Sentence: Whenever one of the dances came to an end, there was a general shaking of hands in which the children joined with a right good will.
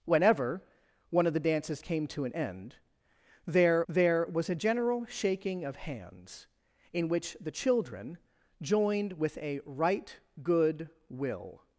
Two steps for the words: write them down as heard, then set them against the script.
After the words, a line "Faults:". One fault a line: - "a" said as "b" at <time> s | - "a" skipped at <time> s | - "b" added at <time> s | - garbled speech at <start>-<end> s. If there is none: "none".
Whenever one of the dances came to an end, there there was a general shaking of hands in which the children joined with a right good will.
Faults:
- "there" added at 3.9 s